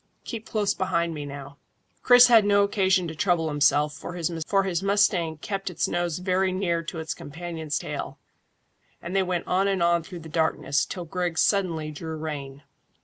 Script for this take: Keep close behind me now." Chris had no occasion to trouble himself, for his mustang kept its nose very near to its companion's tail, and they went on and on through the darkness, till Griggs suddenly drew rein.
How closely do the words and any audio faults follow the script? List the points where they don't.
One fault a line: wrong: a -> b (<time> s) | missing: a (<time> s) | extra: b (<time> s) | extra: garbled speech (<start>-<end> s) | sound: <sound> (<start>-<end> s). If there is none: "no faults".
no faults